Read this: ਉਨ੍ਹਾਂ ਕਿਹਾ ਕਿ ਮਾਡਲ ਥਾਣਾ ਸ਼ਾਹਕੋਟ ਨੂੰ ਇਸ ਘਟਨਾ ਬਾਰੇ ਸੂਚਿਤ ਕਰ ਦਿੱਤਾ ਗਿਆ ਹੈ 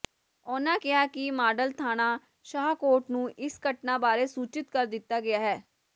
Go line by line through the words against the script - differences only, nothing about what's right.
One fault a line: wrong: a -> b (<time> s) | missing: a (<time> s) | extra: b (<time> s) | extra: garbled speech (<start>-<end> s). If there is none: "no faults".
no faults